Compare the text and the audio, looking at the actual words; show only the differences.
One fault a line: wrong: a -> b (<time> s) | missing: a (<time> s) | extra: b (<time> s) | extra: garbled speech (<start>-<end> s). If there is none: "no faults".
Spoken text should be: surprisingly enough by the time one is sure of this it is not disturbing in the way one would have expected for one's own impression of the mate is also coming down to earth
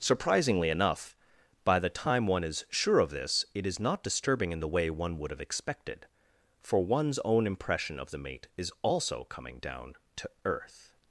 no faults